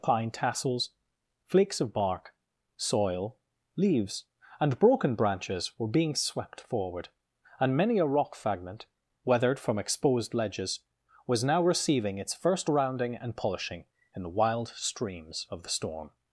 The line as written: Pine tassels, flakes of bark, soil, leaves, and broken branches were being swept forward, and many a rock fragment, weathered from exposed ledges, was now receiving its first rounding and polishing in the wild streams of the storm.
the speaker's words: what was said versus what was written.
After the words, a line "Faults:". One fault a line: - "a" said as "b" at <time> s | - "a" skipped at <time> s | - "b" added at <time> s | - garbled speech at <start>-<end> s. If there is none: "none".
Pine tassels, flakes of bark, soil, leaves, and broken branches were being swept forward, and many a rock fragment, weathered from exposed ledges, was now receiving its first rounding and polishing in the wild streams of the storm.
Faults:
none